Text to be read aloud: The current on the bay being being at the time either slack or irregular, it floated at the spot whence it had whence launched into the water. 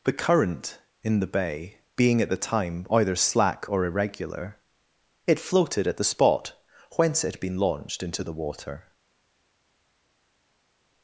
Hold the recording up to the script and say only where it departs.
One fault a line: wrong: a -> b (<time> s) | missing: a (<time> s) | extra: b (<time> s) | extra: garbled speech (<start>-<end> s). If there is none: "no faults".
wrong: on -> in (1.0 s)
missing: being (2.2 s)
wrong: whence -> been (7.4 s)